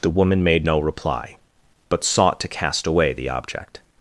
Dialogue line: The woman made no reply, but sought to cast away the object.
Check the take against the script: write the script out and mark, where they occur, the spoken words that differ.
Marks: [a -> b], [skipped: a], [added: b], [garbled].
The woman made no reply, but sought to cast away the object.